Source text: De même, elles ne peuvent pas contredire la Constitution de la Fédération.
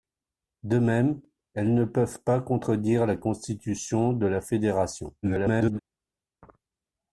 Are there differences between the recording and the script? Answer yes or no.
yes